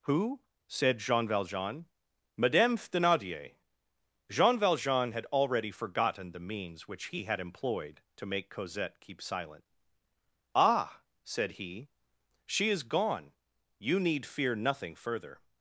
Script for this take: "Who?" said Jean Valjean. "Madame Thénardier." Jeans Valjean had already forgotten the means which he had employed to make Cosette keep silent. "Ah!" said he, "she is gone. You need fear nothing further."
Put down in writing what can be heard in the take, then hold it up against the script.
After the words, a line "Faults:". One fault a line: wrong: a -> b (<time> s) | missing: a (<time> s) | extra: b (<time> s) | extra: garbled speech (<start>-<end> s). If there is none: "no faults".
"Who?" said Jean Valjean. "Madame Thénardier." Jean Valjean had already forgotten the means which he had employed to make Cosette keep silent. "Ah!" said he, "she is gone. You need fear nothing further."
Faults:
wrong: Jeans -> Jean (4.3 s)